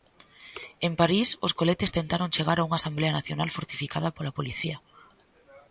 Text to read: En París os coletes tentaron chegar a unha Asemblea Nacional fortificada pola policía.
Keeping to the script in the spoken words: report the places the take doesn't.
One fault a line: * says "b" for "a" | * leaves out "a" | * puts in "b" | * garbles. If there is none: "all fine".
all fine